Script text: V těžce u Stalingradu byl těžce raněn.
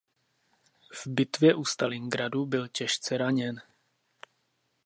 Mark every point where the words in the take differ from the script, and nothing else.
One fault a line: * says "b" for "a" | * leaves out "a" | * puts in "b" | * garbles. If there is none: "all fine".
* says "bitvě" for "těžce"